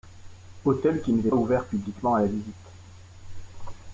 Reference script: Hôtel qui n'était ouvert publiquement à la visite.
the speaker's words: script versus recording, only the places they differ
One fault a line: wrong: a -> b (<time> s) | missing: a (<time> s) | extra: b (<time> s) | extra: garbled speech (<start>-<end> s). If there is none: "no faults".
no faults